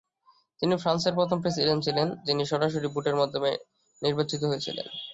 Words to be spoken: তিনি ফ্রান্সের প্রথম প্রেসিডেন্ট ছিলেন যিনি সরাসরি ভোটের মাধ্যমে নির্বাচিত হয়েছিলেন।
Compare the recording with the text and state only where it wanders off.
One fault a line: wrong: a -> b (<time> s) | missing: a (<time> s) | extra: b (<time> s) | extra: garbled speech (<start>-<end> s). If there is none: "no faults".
no faults